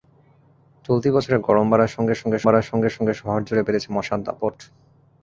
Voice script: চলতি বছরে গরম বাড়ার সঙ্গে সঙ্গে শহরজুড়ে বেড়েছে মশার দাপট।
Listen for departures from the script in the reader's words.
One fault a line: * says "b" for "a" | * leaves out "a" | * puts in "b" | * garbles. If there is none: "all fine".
* puts in "বাড়ার সঙ্গে সঙ্গে"